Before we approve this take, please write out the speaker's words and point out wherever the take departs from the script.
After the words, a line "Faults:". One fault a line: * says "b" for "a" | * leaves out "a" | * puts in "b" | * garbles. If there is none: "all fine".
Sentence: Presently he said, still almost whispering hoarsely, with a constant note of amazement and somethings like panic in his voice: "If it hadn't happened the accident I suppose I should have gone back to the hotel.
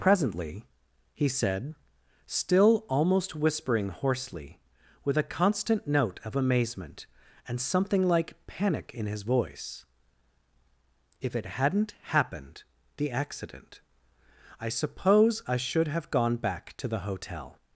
Presently he said, still almost whispering hoarsely, with a constant note of amazement and something like panic in his voice: "If it hadn't happened the accident I suppose I should have gone back to the hotel.
Faults:
* says "something" for "somethings"